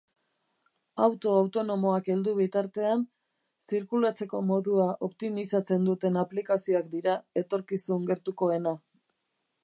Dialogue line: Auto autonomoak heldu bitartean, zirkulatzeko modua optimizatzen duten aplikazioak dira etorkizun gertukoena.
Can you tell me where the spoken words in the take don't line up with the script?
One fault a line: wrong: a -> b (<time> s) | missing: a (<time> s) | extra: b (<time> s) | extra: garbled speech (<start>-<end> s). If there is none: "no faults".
no faults